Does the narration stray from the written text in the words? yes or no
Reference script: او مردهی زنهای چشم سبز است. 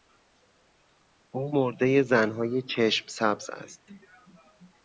no